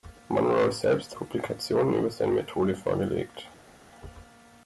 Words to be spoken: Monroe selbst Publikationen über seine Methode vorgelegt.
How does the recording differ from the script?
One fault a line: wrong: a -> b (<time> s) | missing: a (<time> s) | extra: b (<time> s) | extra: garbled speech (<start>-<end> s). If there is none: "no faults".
no faults